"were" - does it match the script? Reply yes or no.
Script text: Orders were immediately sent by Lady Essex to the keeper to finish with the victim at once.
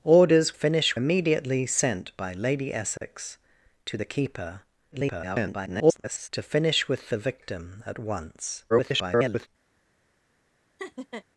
no